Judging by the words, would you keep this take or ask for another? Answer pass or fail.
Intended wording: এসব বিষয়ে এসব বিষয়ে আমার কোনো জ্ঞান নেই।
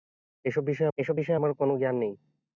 pass